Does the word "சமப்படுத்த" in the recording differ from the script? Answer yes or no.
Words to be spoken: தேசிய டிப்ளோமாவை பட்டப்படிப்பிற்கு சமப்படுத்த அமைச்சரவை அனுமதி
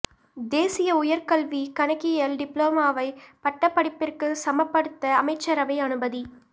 no